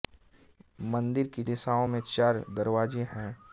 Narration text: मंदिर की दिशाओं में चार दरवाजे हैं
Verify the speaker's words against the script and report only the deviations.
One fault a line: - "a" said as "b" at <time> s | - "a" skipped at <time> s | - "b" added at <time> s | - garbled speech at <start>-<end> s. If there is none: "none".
none